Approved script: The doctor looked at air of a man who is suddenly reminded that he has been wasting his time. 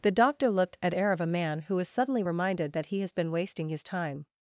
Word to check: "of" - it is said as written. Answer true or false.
true